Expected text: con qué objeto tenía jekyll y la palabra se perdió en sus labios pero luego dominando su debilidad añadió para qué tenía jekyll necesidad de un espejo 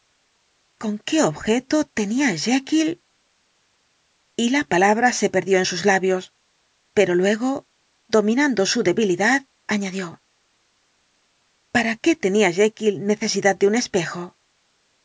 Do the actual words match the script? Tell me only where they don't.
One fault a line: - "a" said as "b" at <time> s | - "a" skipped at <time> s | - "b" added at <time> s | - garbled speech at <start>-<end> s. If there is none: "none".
none